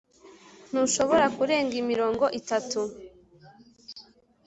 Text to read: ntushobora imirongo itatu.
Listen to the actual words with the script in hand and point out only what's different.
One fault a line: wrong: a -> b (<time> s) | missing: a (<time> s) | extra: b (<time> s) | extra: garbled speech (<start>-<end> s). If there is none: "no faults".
extra: kurenga (1.4 s)